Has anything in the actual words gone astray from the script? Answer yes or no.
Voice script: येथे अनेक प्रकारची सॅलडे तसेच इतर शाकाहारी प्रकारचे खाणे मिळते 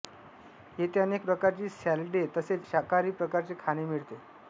yes